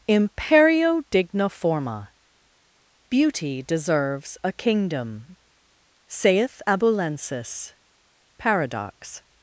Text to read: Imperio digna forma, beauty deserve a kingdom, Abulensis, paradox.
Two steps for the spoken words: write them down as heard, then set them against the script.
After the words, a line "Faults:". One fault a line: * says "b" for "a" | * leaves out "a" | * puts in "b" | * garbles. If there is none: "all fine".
Imperio digna forma, beauty deserves a kingdom, saith Abulensis, paradox.
Faults:
* says "deserves" for "deserve"
* puts in "saith"